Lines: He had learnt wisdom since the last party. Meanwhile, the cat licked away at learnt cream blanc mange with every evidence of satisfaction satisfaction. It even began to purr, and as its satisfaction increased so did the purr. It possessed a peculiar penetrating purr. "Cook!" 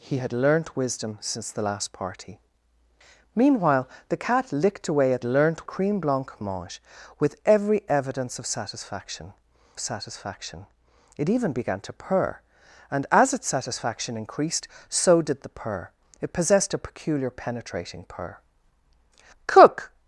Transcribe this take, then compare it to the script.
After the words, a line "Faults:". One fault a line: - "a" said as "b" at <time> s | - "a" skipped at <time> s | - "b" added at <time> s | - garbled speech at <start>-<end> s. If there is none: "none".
He had learnt wisdom since the last party. Meanwhile, the cat licked away at learnt cream blanc mange with every evidence of satisfaction satisfaction. It even began to purr, and as its satisfaction increased so did the purr. It possessed a peculiar penetrating purr. "Cook!"
Faults:
none